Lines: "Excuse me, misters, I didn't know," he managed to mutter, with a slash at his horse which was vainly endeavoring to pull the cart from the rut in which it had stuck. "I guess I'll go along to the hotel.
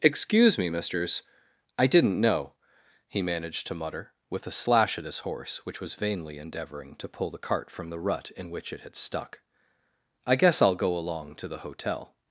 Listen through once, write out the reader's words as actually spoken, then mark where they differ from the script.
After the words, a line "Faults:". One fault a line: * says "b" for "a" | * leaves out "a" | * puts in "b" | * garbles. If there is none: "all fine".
"Excuse me, misters, I didn't know," he managed to mutter, with a slash at his horse which was vainly endeavoring to pull the cart from the rut in which it had stuck. "I guess I'll go along to the hotel.
Faults:
all fine